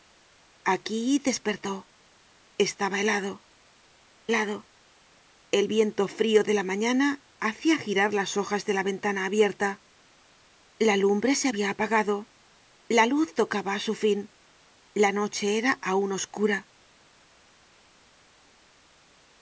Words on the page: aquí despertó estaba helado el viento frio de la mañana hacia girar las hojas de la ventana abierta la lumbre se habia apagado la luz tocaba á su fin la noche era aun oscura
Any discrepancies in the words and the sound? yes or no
yes